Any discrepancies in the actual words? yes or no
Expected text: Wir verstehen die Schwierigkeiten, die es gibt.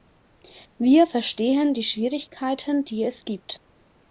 no